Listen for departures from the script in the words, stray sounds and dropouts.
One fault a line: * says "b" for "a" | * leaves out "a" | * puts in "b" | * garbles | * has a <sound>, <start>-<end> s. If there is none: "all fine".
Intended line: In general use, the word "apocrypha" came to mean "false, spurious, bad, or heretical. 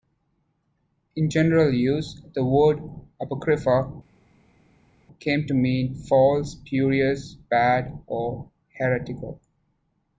all fine